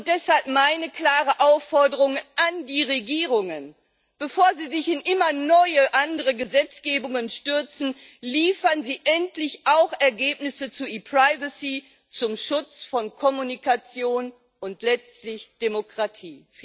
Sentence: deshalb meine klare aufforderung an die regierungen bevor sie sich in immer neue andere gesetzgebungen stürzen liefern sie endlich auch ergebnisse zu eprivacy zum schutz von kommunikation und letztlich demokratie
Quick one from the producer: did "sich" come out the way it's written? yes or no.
yes